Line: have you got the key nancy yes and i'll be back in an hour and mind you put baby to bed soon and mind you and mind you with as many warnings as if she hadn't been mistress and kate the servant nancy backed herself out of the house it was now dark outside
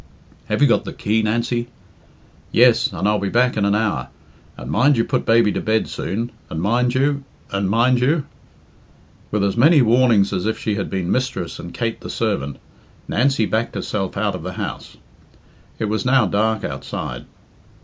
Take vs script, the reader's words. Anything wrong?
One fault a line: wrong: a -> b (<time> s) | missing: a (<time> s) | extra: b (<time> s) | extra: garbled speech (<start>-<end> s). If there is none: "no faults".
wrong: hadn't -> had (10.7 s)